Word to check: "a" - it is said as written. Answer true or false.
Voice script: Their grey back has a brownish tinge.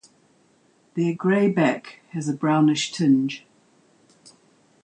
true